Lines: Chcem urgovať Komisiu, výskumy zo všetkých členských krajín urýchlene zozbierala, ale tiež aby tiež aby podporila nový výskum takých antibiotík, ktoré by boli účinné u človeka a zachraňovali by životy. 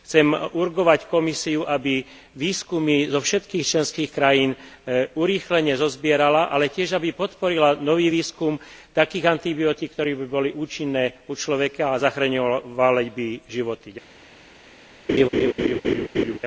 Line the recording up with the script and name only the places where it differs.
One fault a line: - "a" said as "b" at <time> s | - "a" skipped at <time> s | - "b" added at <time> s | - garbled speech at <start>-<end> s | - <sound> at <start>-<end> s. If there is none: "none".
- "aby" added at 1.6 s
- "tiež aby" skipped at 7.1 s
- laugh at 15.1-16.4 s